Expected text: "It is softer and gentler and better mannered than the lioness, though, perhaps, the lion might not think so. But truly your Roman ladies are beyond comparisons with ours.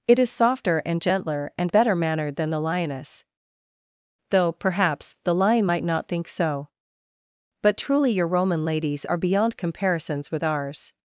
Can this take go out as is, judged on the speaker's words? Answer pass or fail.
pass